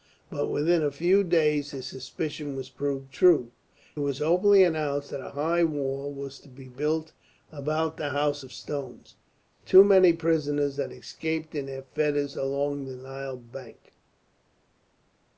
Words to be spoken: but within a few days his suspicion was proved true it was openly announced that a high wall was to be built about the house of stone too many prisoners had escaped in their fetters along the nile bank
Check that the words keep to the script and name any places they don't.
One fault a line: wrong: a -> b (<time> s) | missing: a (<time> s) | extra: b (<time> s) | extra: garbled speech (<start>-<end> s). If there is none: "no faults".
missing: it (3.5 s)